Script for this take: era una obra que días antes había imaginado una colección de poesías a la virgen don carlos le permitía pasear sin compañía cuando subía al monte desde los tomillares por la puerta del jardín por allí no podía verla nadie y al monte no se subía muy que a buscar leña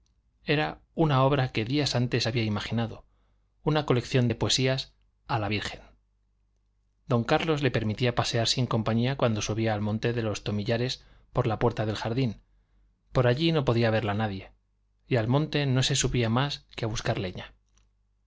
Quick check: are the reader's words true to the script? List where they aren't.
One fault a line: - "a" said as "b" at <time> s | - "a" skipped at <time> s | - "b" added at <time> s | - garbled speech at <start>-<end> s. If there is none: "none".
- "desde" said as "de" at 10.1 s
- "muy" said as "más" at 16.3 s